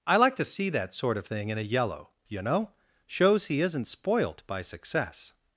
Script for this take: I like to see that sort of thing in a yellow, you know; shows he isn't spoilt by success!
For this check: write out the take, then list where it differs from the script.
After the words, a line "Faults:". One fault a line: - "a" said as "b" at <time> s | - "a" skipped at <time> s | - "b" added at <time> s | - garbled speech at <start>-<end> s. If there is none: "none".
I like to see that sort of thing in a yellow, you know; shows he isn't spoilt by success!
Faults:
none